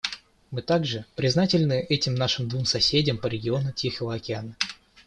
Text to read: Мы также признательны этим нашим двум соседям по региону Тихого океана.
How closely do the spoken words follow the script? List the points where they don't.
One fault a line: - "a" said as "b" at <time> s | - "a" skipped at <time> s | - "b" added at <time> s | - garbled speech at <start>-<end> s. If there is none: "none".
none